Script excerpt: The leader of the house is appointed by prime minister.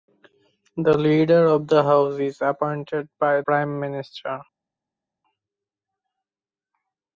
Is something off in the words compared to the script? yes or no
no